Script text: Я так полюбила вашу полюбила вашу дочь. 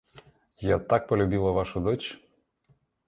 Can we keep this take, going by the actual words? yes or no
no